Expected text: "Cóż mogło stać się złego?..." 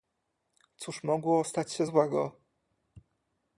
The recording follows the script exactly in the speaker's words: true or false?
true